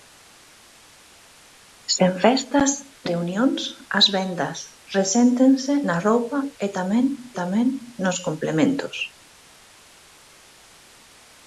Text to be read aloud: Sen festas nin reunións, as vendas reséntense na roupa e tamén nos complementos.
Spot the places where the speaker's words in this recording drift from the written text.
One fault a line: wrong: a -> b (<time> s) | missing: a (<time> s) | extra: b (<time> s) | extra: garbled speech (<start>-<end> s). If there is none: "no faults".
missing: nin (2.7 s)
extra: tamén (7.4 s)